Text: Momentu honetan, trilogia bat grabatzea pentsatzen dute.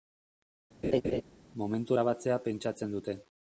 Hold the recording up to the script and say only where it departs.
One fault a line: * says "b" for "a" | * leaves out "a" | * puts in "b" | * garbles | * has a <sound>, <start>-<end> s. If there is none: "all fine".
* has a laugh, 0.8-1.2 s
* leaves out "honetan trilogia bat"